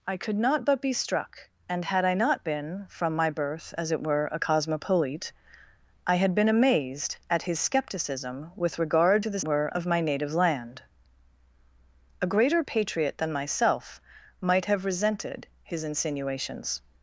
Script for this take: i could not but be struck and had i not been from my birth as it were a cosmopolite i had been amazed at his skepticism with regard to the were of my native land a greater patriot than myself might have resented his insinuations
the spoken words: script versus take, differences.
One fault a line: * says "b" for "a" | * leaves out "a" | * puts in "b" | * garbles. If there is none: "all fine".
all fine